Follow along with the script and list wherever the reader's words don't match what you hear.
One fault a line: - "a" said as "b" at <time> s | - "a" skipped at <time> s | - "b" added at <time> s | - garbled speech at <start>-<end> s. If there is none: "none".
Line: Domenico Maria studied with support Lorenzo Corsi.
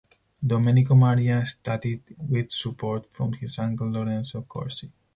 - "from his uncle" added at 3.1 s